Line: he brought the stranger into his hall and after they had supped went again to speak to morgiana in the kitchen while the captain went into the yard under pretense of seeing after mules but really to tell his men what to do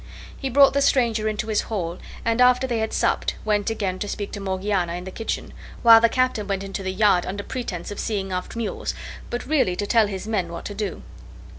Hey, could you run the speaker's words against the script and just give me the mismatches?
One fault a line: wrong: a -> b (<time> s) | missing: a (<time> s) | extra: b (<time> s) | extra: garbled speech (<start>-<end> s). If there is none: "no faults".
no faults